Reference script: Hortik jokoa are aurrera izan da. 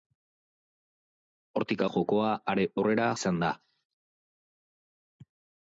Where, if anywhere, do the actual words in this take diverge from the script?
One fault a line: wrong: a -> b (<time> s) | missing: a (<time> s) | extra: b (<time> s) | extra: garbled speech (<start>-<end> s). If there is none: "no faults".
no faults